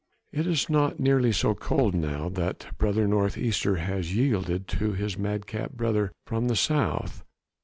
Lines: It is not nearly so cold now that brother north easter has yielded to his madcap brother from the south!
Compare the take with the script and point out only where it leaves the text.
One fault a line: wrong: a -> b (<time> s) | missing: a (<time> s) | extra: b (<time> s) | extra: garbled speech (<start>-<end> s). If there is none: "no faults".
no faults